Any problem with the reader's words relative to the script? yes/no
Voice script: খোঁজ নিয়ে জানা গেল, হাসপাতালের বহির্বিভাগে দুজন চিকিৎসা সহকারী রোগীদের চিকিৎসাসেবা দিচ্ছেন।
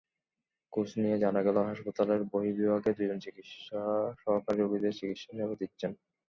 no